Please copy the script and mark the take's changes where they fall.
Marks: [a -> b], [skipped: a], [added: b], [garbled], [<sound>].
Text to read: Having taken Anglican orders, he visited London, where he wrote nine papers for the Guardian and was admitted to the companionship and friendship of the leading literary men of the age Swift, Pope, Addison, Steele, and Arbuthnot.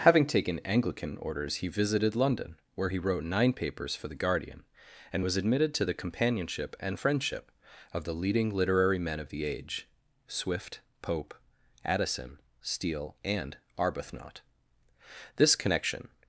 Having taken Anglican orders, he visited London, where he wrote nine papers for the Guardian and was admitted to the companionship and friendship of the leading literary men of the age Swift, Pope, Addison, Steele, and Arbuthnot. [added: This connection]